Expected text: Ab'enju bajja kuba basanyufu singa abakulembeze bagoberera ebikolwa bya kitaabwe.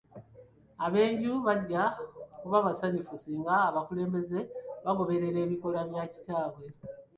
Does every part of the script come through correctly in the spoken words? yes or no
yes